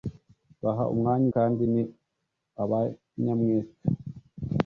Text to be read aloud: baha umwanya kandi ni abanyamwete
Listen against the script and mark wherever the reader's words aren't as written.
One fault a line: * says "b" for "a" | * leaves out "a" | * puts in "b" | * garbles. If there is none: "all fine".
all fine